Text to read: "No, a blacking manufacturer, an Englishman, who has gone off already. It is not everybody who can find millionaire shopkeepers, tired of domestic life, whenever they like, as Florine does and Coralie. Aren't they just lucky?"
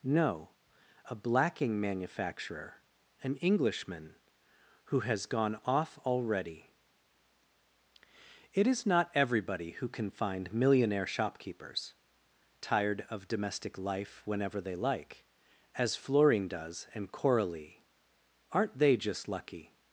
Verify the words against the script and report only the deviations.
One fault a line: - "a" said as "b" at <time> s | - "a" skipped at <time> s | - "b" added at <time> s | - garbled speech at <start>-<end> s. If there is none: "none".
none